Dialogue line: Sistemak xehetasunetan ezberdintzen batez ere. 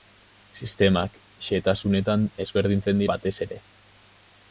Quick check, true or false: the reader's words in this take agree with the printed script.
true